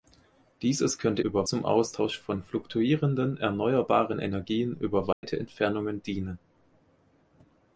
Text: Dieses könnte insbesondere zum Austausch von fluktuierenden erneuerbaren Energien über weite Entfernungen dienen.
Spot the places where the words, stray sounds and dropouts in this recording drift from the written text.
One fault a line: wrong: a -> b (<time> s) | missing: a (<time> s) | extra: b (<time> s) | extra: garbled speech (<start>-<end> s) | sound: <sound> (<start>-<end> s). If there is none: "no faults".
wrong: insbesondere -> über (1.2 s)
sound: dropout (5.1-5.2 s)